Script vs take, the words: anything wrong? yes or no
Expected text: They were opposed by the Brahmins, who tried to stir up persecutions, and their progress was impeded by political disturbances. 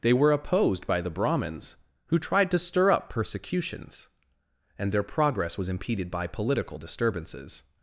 no